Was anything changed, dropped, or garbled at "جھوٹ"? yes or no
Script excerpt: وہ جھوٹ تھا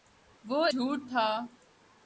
no